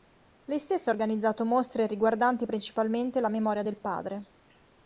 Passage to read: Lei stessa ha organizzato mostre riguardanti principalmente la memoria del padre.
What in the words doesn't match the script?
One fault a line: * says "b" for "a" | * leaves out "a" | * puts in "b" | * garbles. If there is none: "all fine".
all fine